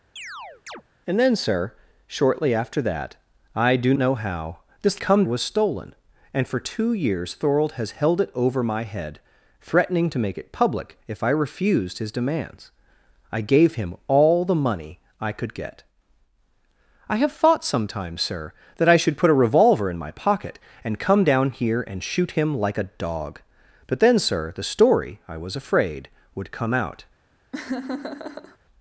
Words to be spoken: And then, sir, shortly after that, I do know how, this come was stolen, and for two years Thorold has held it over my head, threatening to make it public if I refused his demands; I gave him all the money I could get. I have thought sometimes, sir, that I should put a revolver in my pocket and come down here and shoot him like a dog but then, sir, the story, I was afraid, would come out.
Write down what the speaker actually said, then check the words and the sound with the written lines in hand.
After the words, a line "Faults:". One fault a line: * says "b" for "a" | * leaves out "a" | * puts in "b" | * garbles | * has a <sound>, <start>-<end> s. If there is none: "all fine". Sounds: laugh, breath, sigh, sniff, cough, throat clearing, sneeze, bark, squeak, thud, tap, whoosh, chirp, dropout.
And then, sir, shortly after that, I do know how, this come was stolen, and for two years Thorold has held it over my head, threatening to make it public if I refused his demands; I gave him all the money I could get. I have thought sometimes, sir, that I should put a revolver in my pocket and come down here and shoot him like a dog but then, sir, the story, I was afraid, would come out.
Faults:
* has a chirp, 0.2-0.8 s
* has a laugh, 27.5-28.6 s